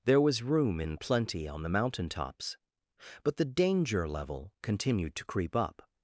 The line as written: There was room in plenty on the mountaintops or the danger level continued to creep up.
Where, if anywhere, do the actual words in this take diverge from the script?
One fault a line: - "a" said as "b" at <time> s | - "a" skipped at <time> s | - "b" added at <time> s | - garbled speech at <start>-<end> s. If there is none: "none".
- "or" said as "but" at 3.2 s